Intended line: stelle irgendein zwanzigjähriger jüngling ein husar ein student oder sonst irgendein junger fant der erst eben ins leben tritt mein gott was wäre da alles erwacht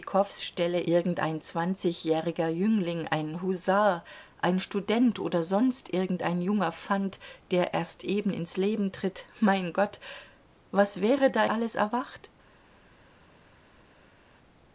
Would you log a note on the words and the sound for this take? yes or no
no